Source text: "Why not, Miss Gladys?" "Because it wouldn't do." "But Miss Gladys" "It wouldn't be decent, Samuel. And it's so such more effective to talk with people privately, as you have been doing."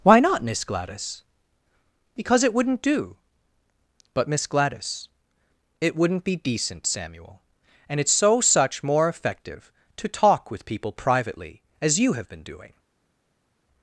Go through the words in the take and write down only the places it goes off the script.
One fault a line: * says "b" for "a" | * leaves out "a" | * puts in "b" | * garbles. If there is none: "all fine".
all fine